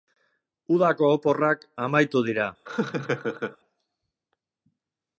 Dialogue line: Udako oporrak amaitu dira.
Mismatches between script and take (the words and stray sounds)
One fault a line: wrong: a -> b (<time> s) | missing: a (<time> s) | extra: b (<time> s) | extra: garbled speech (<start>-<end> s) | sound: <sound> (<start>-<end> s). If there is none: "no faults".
sound: laugh (2.7-3.6 s)